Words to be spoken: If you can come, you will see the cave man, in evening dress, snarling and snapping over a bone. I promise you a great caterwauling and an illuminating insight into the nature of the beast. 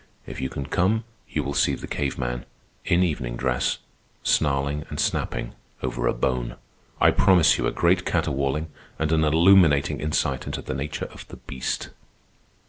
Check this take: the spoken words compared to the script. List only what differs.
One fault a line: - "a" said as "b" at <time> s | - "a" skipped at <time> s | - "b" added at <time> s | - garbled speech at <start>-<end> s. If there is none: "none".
none